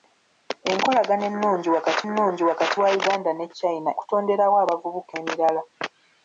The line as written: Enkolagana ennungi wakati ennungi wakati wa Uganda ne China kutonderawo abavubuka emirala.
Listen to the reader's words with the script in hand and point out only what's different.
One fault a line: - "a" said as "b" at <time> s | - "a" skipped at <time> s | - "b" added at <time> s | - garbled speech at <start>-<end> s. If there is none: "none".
none